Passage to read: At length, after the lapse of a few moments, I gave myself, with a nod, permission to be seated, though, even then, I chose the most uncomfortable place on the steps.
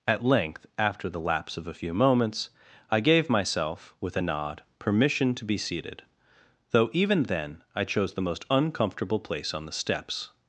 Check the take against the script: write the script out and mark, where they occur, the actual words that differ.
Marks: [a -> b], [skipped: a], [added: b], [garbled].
At length, after the lapse of a few moments, I gave myself, with a nod, permission to be seated, though, even then, I chose the most uncomfortable place on the steps.